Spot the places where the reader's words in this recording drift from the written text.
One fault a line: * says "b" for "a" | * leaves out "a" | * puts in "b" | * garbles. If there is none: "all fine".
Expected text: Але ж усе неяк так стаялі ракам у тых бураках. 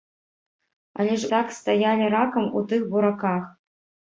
* leaves out "усе неяк"